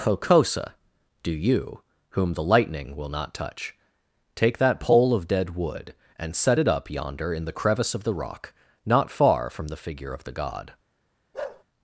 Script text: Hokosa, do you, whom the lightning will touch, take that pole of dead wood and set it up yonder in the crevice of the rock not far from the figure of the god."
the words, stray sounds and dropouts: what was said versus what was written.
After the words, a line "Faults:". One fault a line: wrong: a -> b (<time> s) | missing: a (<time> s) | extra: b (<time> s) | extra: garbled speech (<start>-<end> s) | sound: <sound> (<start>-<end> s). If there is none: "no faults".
Hokosa, do you, whom the lightning will not touch, take that pole of dead wood and set it up yonder in the crevice of the rock not far from the figure of the god."
Faults:
extra: not (3.1 s)
sound: bark (11.3-11.6 s)